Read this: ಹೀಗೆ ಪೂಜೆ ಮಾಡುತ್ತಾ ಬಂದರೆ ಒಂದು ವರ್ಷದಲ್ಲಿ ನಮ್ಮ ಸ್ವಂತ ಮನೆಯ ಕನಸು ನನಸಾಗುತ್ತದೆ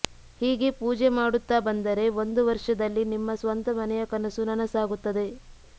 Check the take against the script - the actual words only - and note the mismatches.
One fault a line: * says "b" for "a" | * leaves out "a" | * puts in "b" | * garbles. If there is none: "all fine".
* says "ನಿಮ್ಮ" for "ನಮ್ಮ"